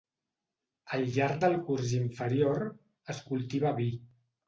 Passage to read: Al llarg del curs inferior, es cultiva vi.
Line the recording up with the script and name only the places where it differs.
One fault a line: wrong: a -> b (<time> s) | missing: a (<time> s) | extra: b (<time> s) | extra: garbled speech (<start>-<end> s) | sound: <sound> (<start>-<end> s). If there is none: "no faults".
no faults